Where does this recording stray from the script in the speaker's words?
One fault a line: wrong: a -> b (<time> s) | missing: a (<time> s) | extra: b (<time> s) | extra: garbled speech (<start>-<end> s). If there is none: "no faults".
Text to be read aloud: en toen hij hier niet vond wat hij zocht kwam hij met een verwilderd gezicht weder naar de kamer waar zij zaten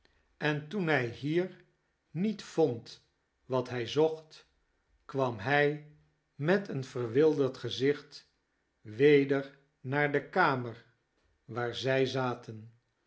no faults